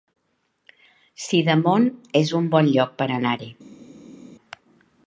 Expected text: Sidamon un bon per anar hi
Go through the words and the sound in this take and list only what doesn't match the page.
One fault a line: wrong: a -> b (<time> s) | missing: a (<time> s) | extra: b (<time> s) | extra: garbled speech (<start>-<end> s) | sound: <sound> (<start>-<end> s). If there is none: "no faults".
extra: es (2.2 s)
extra: lloc (2.8 s)